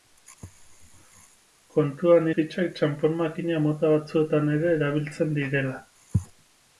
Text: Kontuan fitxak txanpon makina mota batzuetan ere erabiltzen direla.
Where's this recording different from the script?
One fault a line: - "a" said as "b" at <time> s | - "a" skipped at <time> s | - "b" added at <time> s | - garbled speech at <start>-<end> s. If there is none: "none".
none